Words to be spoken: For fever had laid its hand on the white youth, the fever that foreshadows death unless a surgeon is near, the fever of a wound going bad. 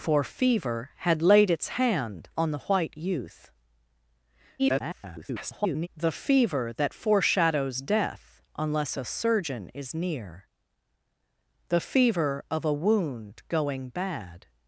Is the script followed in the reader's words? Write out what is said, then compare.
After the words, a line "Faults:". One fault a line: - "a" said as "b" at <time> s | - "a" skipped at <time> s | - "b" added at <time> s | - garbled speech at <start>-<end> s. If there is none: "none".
For fever had laid its hand on the white youth, [garbled] the fever that foreshadows death unless a surgeon is near, the fever of a wound going bad.
Faults:
- garbled speech at 4.6-5.9 s